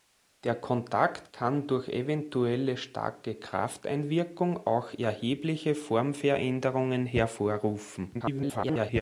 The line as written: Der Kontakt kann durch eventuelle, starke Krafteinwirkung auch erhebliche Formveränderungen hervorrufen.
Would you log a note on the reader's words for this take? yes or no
yes